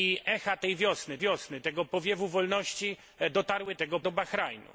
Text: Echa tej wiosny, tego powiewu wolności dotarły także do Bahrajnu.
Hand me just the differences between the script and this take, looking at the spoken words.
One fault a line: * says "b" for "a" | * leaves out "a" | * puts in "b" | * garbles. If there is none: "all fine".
* puts in "wiosny"
* says "tego" for "także"